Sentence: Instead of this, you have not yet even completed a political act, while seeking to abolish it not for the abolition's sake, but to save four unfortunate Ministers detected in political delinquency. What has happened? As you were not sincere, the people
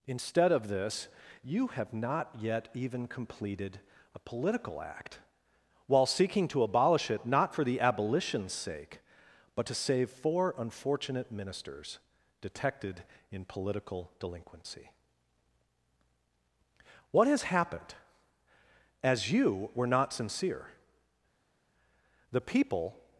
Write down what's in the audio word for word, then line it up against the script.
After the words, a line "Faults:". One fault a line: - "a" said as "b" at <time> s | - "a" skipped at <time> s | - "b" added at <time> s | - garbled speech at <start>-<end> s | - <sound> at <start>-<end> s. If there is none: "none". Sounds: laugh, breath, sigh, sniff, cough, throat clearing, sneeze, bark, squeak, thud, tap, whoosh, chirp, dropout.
Instead of this, you have not yet even completed a political act, while seeking to abolish it not for the abolition's sake, but to save four unfortunate Ministers detected in political delinquency. What has happened? As you were not sincere, the people
Faults:
none